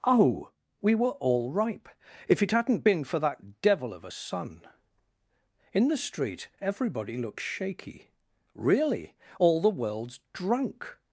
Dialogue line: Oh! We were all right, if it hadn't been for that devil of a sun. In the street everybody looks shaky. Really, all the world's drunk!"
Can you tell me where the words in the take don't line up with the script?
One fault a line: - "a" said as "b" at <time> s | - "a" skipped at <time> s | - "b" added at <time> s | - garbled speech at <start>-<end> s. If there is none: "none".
- "right" said as "ripe" at 1.5 s